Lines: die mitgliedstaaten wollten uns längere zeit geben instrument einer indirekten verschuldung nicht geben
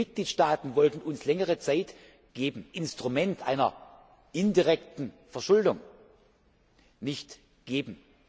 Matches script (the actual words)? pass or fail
pass